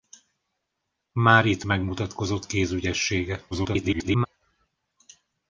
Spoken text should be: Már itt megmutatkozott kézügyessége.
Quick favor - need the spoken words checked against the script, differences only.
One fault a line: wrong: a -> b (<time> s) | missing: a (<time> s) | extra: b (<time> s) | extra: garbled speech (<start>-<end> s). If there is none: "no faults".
extra: garbled speech (3.5-4.3 s)